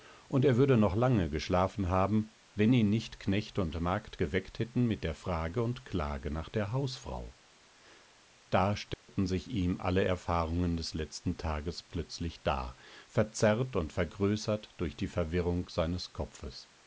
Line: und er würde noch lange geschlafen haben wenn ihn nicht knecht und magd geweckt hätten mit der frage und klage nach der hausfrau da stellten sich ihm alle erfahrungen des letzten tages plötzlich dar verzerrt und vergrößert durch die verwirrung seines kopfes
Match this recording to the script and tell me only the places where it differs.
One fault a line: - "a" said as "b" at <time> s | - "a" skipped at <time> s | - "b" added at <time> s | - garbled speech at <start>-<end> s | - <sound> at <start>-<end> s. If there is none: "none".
- dropout at 8.9-9.1 s